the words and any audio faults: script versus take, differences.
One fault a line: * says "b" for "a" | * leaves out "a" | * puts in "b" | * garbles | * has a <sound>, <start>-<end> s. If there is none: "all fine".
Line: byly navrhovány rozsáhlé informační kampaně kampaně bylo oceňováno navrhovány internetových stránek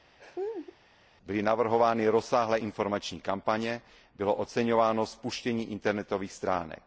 * has a laugh, 0.2-0.8 s
* leaves out "kampaně"
* says "spuštění" for "navrhovány"